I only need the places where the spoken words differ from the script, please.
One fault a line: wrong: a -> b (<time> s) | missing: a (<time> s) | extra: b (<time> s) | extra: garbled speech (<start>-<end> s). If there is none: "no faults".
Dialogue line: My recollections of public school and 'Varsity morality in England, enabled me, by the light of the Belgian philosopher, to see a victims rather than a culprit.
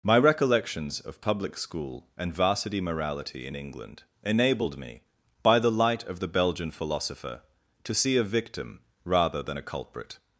wrong: victims -> victim (8.2 s)